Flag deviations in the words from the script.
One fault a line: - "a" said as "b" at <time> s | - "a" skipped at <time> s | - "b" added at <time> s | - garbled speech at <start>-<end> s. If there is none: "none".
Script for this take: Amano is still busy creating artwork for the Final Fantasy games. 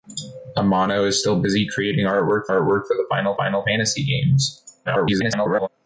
- "artwork" added at 2.5 s
- "Final" added at 3.4 s
- garbled speech at 4.8-5.7 s